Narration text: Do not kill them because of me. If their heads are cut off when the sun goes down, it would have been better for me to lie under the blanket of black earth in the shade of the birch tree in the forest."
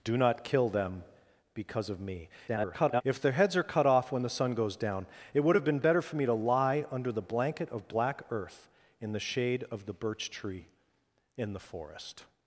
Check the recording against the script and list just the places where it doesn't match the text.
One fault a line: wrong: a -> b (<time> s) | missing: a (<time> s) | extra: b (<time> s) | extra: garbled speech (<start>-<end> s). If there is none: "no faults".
extra: garbled speech (2.5-3.0 s)